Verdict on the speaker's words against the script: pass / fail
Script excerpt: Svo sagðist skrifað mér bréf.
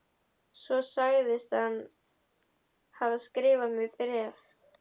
fail